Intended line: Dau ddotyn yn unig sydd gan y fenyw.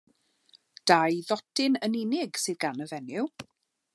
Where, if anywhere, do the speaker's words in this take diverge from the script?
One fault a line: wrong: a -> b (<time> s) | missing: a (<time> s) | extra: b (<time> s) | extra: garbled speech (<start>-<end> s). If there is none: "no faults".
no faults